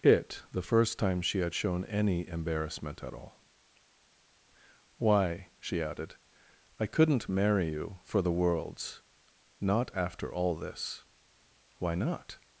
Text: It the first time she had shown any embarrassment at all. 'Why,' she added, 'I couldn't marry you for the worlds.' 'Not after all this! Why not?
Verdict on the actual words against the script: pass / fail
pass